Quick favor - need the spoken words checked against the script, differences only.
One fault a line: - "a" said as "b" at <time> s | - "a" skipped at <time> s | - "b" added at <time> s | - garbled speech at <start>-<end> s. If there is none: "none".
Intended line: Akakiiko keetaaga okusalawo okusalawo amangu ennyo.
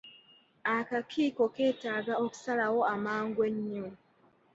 - "okusalawo" skipped at 2.8 s